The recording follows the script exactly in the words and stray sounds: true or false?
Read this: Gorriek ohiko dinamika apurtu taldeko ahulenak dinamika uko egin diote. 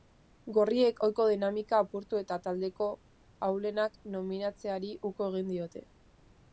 false